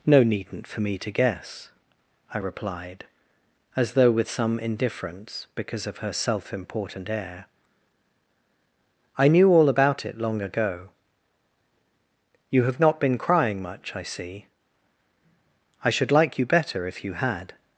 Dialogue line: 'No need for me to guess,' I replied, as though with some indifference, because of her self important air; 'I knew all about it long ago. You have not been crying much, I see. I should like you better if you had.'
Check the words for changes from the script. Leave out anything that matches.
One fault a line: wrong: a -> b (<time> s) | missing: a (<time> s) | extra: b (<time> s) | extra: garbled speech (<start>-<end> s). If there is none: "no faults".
wrong: need -> needn't (0.2 s)